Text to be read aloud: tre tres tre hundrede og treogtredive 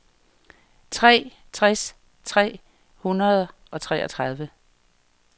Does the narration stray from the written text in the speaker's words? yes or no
no